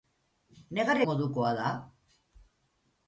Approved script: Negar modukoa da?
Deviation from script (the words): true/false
false